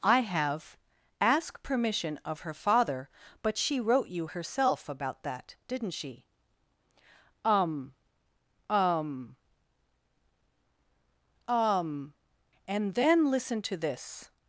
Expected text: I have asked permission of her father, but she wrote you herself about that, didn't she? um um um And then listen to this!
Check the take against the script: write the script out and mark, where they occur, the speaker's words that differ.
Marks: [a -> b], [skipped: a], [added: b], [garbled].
I have [asked -> ask] permission of her father, but she wrote you herself about that, didn't she? um um um And then listen to this!